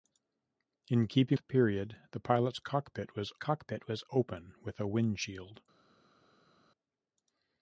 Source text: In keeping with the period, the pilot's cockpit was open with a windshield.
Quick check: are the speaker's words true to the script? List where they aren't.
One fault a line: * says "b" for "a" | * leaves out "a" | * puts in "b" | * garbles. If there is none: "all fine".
* leaves out "with"
* puts in "cockpit was"